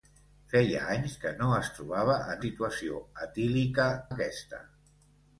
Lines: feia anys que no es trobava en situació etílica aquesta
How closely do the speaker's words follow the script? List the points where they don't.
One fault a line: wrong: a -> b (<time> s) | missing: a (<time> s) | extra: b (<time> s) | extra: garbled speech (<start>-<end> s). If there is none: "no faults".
no faults